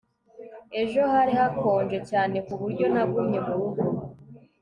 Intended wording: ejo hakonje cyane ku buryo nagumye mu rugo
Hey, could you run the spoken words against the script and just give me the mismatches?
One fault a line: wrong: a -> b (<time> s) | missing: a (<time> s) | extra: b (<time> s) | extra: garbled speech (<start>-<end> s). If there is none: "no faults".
extra: hari (1.1 s)